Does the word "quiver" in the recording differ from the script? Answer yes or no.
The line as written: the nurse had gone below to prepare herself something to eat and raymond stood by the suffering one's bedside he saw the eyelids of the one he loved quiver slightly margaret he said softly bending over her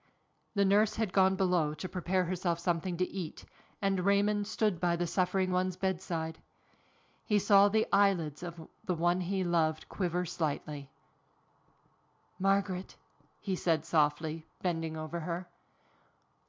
no